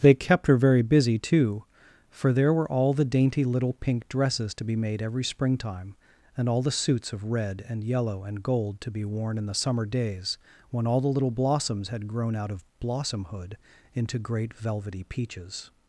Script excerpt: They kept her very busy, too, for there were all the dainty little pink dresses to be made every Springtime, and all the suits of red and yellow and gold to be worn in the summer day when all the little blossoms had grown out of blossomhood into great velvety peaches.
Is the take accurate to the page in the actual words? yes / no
no